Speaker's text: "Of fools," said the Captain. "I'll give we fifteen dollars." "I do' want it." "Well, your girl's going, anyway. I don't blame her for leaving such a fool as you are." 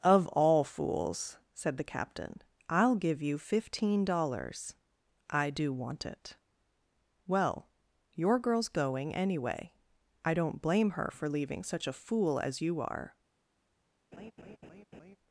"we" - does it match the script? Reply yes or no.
no